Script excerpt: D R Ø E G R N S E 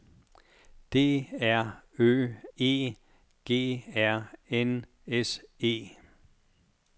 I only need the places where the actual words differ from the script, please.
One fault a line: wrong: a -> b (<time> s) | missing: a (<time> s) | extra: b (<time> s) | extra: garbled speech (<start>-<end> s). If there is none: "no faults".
no faults